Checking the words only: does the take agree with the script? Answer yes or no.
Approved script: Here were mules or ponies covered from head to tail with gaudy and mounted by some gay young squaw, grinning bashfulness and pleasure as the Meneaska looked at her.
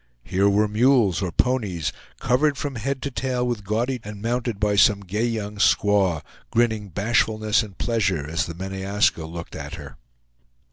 yes